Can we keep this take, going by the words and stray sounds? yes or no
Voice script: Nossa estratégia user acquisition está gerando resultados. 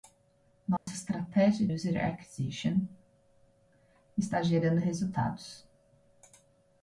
no